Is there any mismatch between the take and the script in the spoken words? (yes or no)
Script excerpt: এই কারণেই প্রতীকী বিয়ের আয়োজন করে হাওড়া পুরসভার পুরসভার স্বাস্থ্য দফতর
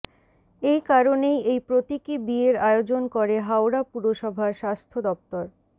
yes